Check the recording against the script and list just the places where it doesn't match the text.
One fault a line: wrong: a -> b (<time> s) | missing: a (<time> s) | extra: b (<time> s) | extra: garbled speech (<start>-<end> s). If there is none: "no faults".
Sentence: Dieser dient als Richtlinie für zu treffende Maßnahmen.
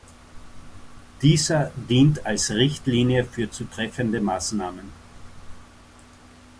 no faults